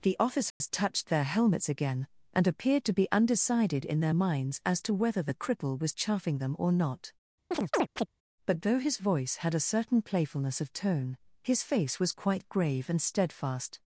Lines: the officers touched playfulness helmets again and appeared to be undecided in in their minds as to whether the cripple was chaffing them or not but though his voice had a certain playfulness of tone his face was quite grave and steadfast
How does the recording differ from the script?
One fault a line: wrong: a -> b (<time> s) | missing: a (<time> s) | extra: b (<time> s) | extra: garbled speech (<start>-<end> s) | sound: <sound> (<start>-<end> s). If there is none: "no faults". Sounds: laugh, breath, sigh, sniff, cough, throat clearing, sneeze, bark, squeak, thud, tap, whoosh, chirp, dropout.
sound: dropout (0.5-0.6 s)
wrong: playfulness -> their (1.1 s)
missing: in (4.0 s)
sound: chirp (7.5-8.1 s)